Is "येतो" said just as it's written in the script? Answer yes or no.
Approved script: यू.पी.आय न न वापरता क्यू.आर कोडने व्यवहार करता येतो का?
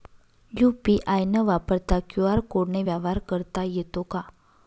yes